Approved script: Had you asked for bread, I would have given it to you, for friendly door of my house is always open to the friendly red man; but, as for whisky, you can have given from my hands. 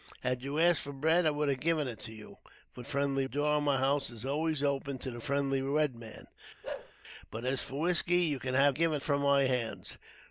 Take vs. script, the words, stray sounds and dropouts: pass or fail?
fail